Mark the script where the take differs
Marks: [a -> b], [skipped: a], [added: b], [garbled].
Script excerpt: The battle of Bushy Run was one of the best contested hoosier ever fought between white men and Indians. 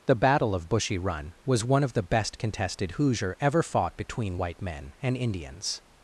The battle of Bushy Run was one of the best contested hoosier ever fought between white men and Indians.